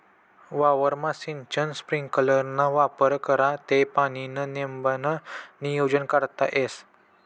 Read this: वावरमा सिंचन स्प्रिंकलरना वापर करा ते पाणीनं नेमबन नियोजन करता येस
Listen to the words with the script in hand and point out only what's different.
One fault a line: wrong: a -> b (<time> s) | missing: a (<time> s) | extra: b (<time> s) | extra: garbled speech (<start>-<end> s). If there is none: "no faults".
no faults